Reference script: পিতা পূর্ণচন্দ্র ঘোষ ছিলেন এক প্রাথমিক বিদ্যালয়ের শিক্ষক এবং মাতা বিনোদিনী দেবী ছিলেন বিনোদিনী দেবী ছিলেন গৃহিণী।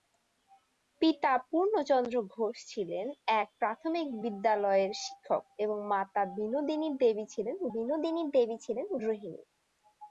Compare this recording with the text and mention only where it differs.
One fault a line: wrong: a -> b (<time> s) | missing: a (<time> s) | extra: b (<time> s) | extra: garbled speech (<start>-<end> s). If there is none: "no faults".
no faults